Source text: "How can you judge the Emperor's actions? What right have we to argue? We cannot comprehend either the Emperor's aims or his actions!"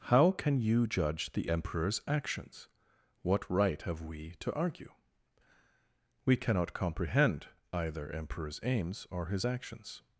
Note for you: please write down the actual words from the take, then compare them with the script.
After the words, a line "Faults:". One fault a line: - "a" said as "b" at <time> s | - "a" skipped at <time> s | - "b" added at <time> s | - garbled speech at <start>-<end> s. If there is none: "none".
"How can you judge the Emperor's actions? What right have we to argue? We cannot comprehend either Emperor's aims or his actions!"
Faults:
- "the" skipped at 8.1 s